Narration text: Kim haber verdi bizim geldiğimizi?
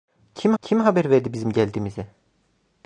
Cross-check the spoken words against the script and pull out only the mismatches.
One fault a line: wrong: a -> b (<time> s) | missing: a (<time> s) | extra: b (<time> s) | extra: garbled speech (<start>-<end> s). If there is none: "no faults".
extra: kim (0.6 s)